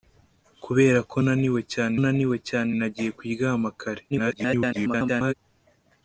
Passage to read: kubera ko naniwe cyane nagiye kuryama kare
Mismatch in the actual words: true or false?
true